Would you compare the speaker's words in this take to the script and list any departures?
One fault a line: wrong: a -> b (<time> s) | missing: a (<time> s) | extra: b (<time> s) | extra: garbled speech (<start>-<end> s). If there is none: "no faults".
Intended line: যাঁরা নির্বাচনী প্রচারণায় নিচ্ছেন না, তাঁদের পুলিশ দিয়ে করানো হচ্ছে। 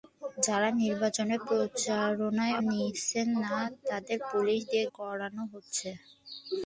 no faults